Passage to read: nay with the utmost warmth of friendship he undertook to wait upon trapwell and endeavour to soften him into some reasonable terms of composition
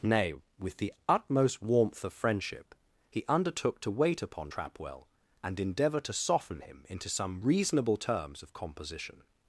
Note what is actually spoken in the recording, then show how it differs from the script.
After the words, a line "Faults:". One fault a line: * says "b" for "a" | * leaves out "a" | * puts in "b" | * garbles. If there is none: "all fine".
nay with the utmost warmth of friendship he undertook to wait upon trapwell and endeavour to soften him into some reasonable terms of composition
Faults:
all fine